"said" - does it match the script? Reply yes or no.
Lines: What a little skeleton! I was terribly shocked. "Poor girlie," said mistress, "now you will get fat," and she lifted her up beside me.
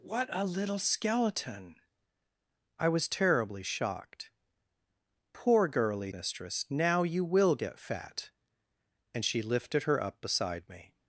no